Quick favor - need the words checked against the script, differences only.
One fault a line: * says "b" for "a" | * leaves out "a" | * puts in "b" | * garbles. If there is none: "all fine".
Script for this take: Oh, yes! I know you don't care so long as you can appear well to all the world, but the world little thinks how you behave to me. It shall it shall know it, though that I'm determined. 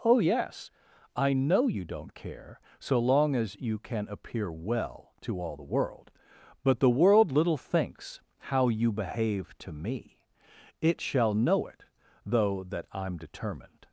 * leaves out "it shall"